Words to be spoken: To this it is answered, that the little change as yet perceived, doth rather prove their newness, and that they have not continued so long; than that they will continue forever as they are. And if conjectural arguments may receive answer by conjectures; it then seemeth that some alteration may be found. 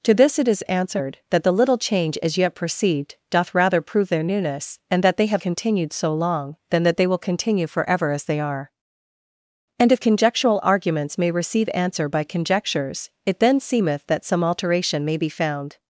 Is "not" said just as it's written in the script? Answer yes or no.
no